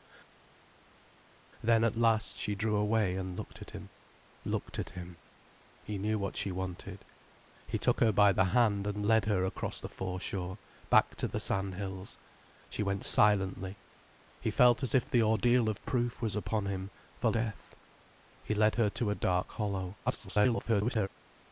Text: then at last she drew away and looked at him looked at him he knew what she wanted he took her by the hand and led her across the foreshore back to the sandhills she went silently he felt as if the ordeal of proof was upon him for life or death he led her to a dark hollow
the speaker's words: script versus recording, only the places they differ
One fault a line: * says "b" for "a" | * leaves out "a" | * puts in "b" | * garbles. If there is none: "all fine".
* leaves out "life or"
* garbles